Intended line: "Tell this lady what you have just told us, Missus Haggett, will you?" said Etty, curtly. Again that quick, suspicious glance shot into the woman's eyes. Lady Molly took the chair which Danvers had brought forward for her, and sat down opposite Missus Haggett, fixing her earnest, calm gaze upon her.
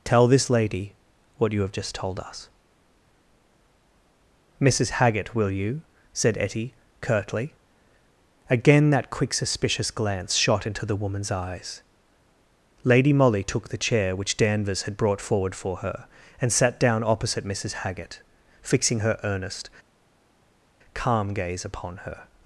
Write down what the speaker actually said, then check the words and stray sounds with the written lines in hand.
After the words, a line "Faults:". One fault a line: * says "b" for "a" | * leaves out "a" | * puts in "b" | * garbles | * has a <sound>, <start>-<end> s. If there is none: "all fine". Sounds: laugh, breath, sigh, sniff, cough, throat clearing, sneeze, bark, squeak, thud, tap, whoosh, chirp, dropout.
"Tell this lady what you have just told us, Missus Haggett, will you?" said Etty, curtly. Again that quick, suspicious glance shot into the woman's eyes. Lady Molly took the chair which Danvers had brought forward for her, and sat down opposite Missus Haggett, fixing her earnest, calm gaze upon her.
Faults:
all fine